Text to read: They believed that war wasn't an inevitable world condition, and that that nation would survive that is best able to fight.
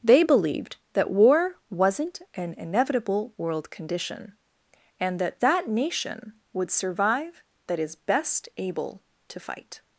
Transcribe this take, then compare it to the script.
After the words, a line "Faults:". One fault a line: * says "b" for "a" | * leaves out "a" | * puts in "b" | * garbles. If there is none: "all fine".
They believed that war wasn't an inevitable world condition, and that that nation would survive that is best able to fight.
Faults:
all fine